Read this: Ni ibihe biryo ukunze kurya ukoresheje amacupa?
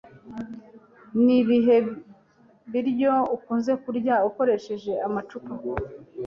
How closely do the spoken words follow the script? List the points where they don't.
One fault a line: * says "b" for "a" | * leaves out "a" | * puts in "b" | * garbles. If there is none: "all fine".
all fine